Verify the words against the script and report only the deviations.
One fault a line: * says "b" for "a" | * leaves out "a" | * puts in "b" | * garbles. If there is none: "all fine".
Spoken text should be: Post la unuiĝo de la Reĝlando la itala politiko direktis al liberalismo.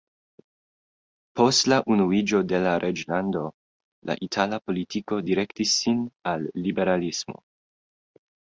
* puts in "sin"